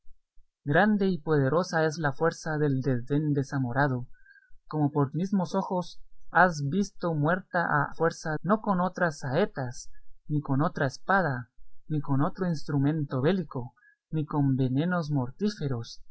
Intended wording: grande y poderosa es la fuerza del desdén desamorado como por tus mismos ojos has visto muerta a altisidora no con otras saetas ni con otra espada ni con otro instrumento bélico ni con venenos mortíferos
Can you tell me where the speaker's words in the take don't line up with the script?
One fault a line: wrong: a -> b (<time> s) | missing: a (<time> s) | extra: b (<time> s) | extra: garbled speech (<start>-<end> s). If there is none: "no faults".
missing: tus (5.1 s)
wrong: altisidora -> fuerza (7.9 s)